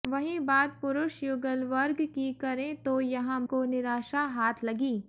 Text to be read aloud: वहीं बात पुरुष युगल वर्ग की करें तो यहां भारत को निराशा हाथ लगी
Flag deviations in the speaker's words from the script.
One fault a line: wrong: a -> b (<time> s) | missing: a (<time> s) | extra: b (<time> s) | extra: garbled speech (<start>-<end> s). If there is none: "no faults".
missing: भारत (3.4 s)